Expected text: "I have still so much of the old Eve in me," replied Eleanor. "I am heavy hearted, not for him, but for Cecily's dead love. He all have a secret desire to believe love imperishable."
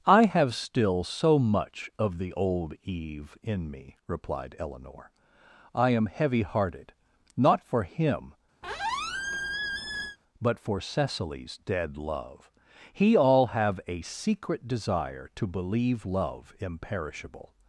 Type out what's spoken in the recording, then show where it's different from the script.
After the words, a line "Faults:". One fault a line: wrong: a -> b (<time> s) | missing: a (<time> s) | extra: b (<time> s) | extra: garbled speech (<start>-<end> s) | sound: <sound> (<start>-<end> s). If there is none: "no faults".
"I have still so much of the old Eve in me," replied Eleanor. "I am heavy hearted, not for him, but for Cecily's dead love. He all have a secret desire to believe love imperishable."
Faults:
sound: squeak (8.6-10.2 s)